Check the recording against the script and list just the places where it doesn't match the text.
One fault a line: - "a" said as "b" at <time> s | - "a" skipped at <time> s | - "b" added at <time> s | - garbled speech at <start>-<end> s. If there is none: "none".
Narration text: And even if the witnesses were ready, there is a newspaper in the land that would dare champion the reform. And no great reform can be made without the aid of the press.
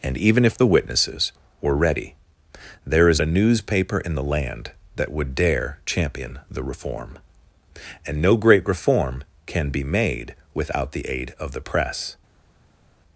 none